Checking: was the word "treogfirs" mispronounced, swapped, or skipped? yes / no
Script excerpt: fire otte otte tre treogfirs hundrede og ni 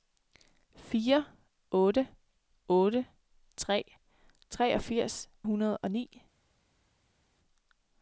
no